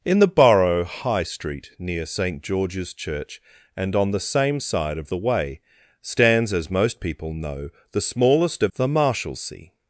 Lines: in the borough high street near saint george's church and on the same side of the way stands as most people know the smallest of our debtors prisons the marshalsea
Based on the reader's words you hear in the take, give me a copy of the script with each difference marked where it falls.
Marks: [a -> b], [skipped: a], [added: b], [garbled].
in the borough high street near saint george's church and on the same side of the way stands as most people know the smallest of [skipped: our debtors prisons] the marshalsea